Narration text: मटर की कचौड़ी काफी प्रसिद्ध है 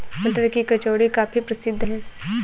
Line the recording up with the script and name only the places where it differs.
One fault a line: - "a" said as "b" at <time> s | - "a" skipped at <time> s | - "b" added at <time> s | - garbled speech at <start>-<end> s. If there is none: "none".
none